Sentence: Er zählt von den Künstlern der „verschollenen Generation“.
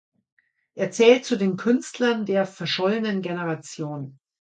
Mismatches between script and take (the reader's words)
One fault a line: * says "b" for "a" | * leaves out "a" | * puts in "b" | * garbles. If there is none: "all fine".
* says "zu" for "von"